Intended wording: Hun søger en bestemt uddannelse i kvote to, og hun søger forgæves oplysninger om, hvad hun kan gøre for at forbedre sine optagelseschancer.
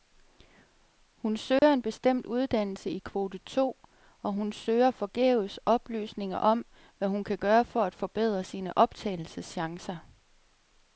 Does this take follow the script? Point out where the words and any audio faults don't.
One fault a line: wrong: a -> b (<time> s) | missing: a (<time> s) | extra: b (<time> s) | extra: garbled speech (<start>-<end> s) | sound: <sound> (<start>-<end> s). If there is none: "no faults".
sound: dropout (1.6-1.6 s)